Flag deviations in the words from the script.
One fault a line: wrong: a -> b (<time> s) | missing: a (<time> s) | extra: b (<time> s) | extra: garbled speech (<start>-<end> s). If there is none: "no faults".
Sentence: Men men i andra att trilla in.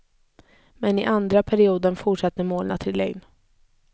missing: men (1.0 s)
extra: perioden fortsatte målen (1.4 s)